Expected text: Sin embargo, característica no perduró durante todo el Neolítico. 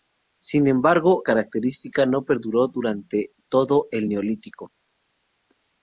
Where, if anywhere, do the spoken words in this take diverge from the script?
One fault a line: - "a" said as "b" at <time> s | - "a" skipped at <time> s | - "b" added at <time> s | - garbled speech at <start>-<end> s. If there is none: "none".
none